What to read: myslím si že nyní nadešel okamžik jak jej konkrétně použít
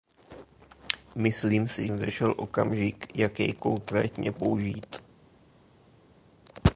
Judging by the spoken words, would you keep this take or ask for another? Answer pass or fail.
fail